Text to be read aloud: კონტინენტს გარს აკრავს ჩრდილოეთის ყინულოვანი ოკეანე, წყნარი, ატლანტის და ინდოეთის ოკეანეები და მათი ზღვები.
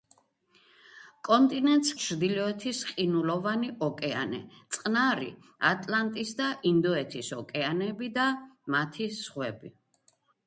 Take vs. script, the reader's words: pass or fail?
fail